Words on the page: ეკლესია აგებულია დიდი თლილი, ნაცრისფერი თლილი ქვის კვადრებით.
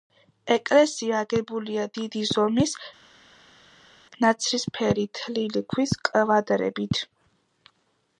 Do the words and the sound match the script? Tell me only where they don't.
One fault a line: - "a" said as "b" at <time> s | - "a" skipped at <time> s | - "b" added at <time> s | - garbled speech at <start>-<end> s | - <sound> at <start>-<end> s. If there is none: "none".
- "თლილი" said as "ზომის" at 2.3 s